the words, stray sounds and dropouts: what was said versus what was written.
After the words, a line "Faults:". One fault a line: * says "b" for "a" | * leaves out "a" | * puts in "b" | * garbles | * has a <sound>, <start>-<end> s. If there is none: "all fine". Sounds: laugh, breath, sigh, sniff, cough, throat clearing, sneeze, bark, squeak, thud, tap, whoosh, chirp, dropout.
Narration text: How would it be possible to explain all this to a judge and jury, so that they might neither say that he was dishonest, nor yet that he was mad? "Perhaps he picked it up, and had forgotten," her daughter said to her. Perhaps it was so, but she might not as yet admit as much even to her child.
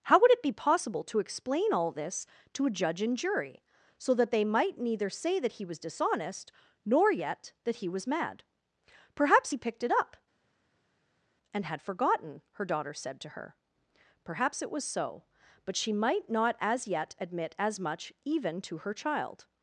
How would it be possible to explain all this to a judge and jury, so that they might neither say that he was dishonest, nor yet that he was mad? "Perhaps he picked it up, and had forgotten," her daughter said to her. Perhaps it was so, but she might not as yet admit as much even to her child.
Faults:
all fine